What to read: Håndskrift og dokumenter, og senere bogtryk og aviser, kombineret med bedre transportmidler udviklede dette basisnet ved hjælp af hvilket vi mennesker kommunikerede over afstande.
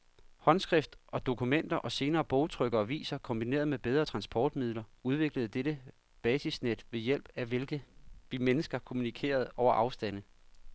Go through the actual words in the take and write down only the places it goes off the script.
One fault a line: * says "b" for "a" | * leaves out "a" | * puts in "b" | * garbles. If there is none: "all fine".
all fine